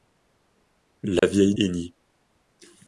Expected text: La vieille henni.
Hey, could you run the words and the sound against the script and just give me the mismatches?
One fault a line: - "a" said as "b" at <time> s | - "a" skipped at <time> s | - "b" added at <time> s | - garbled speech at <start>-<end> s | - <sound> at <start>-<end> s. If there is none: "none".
- dropout at 1.2-1.2 s